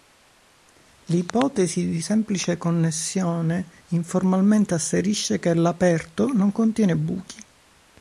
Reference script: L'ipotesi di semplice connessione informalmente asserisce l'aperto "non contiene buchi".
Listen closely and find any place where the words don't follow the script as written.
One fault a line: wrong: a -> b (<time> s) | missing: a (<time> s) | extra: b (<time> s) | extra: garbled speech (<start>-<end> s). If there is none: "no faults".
extra: che (5.4 s)